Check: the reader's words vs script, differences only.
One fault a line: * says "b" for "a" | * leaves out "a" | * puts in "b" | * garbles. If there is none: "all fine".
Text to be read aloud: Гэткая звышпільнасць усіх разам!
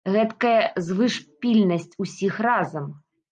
all fine